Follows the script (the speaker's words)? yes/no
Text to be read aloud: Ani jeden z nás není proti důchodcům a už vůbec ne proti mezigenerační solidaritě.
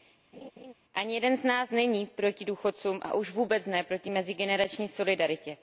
yes